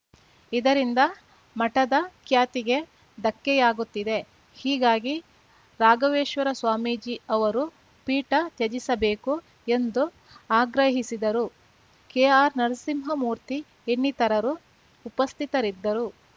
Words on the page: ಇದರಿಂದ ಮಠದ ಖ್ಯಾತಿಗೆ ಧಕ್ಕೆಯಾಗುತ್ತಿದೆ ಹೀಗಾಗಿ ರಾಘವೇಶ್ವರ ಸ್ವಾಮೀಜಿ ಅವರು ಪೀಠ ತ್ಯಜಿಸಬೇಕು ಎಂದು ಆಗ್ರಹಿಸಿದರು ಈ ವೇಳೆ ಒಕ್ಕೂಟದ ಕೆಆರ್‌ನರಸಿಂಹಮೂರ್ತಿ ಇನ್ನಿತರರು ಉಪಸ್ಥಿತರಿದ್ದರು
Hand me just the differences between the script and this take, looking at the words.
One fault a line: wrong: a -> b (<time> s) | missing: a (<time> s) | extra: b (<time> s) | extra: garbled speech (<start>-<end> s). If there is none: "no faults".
missing: ಈ ವೇಳೆ ಒಕ್ಕೂಟದ (11.5 s)